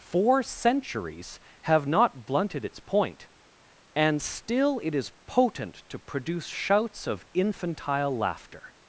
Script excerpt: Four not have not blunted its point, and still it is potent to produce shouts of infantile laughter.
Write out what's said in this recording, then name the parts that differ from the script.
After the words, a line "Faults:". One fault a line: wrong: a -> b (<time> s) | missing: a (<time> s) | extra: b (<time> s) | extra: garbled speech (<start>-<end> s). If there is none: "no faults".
Four centuries have not blunted its point, and still it is potent to produce shouts of infantile laughter.
Faults:
wrong: not -> centuries (0.4 s)